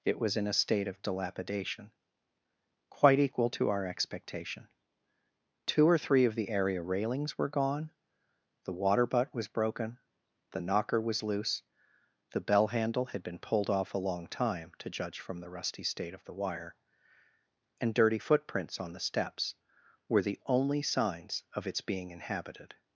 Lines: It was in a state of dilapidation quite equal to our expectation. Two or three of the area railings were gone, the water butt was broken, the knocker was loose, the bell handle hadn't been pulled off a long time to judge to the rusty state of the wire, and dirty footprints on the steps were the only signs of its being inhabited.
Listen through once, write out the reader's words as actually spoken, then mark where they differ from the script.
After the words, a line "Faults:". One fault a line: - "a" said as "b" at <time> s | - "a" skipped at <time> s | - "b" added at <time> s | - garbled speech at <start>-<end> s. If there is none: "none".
It was in a state of dilapidation quite equal to our expectation. Two or three of the area railings were gone, the water butt was broken, the knocker was loose, the bell handle had been pulled off a long time to judge from the rusty state of the wire, and dirty footprints on the steps were the only signs of its being inhabited.
Faults:
- "hadn't" said as "had" at 13.1 s
- "to" said as "from" at 15.2 s